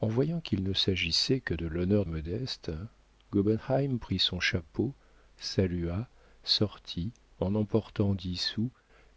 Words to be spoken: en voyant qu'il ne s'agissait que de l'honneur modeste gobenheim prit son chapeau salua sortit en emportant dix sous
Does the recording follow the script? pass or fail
pass